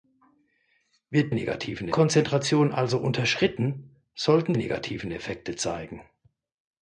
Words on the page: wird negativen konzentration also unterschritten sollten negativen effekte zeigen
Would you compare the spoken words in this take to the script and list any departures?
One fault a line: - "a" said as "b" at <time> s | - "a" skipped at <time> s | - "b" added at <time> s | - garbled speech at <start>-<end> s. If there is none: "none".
none